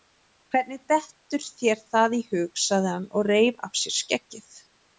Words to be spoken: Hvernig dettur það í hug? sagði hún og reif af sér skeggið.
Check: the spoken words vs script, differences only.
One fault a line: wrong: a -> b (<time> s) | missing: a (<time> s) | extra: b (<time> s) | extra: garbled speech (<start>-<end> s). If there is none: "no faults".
extra: þér (1.6 s)
wrong: hún -> hann (3.0 s)